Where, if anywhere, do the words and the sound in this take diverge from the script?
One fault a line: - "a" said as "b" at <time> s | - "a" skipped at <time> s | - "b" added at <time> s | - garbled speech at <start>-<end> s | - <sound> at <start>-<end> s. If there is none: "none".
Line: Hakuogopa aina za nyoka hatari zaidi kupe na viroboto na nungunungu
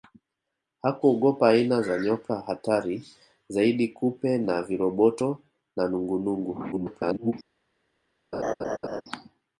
- garbled speech at 6.7-7.3 s
- laugh at 8.3-9.0 s